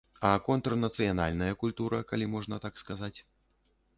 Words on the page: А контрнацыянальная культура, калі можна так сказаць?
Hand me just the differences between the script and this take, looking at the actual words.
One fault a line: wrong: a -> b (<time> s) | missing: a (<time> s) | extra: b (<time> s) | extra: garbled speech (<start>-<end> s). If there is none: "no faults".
no faults